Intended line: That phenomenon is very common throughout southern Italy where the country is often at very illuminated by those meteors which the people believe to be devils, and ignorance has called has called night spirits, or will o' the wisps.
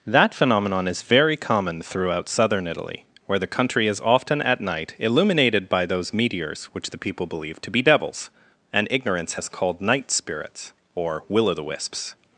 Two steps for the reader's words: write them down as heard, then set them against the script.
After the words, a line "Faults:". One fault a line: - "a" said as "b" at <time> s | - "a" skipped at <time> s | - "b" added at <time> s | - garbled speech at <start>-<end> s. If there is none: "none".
That phenomenon is very common throughout southern Italy where the country is often at night illuminated by those meteors which the people believe to be devils, and ignorance has called night spirits, or will o' the wisps.
Faults:
- "very" said as "night" at 4.6 s
- "has called" skipped at 9.8 s